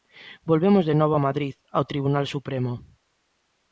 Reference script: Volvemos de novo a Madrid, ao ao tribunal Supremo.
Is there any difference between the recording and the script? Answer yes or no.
yes